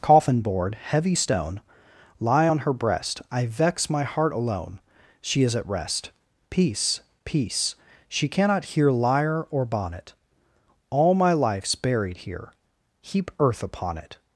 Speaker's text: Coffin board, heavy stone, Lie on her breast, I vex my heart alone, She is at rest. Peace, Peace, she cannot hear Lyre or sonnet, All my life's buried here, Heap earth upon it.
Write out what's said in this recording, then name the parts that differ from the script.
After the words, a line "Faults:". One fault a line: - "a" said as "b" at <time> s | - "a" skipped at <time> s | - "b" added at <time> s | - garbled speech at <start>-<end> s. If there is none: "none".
Coffin board, heavy stone, Lie on her breast, I vex my heart alone, She is at rest. Peace, Peace, she cannot hear Lyre or bonnet, All my life's buried here, Heap earth upon it.
Faults:
- "sonnet" said as "bonnet" at 9.6 s